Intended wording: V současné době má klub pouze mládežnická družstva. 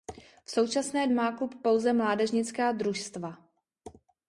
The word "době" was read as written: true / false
false